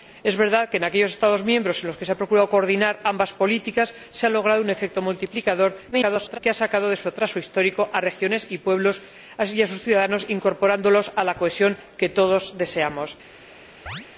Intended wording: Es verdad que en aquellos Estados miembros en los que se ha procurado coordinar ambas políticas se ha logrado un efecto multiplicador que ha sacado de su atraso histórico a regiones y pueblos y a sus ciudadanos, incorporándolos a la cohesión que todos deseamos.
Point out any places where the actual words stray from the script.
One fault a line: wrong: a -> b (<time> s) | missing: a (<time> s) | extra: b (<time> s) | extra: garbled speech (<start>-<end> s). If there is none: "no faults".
extra: garbled speech (5.9-6.4 s)